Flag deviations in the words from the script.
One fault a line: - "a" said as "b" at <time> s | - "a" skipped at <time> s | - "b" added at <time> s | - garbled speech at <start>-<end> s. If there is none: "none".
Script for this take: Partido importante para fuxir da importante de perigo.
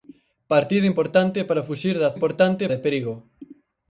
none